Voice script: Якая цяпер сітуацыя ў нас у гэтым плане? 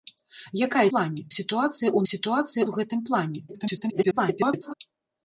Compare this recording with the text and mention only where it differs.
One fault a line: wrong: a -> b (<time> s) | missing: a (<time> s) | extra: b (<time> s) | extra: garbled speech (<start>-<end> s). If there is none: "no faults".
wrong: цяпер -> плане (0.9 s)
wrong: нас -> сітуацыя (2.1 s)
extra: garbled speech (3.5-4.7 s)